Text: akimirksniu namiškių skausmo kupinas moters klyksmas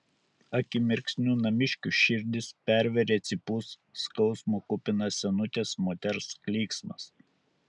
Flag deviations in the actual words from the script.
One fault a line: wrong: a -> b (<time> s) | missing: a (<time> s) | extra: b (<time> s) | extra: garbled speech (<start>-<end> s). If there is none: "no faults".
extra: širdis pervėrė cypus (2.0 s)
extra: senutės (5.3 s)